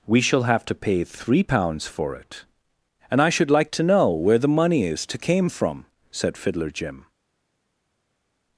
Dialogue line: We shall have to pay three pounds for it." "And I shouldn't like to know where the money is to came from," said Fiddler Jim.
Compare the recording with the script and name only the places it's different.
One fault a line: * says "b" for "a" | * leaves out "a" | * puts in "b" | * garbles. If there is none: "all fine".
* says "should" for "shouldn't"